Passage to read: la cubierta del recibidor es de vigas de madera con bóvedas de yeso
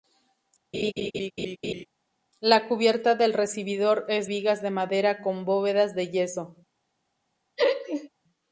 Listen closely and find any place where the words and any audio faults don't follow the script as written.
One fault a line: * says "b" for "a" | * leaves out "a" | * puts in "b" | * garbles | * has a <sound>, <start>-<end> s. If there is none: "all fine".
* has a laugh, 0.7-1.9 s
* leaves out "de"
* has a laugh, 7.6-8.1 s